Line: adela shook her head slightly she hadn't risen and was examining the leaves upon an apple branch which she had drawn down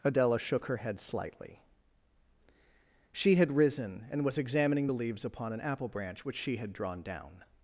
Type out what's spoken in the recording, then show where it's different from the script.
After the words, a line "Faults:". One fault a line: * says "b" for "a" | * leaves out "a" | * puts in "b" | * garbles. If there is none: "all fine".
adela shook her head slightly she had risen and was examining the leaves upon an apple branch which she had drawn down
Faults:
* says "had" for "hadn't"